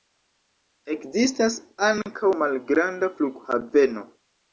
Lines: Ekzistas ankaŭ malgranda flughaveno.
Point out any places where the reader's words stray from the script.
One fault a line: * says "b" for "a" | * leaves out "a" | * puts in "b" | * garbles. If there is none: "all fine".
all fine